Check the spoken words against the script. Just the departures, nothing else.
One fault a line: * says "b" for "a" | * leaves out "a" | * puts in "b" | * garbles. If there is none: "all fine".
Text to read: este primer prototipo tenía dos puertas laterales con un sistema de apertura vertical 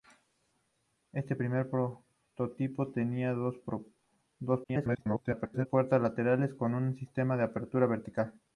* garbles